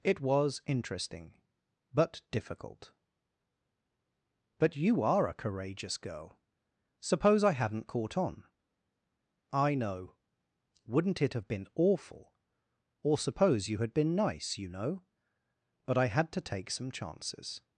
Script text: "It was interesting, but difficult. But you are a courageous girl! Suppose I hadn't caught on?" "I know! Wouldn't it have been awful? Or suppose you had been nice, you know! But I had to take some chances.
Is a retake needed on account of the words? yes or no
no